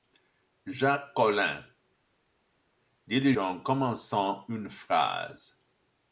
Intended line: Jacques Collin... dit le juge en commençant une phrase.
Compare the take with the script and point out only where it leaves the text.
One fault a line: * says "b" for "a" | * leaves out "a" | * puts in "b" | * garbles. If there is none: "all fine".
* leaves out "juge"